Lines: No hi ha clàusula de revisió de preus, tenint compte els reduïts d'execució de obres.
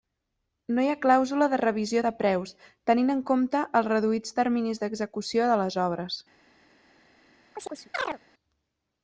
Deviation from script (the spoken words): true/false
true